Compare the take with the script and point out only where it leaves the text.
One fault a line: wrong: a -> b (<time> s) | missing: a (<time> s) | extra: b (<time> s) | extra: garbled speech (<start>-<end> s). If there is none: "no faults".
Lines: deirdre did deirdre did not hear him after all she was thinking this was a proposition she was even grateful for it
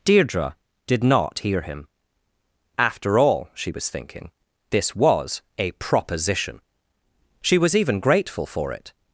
missing: deirdre did (1.0 s)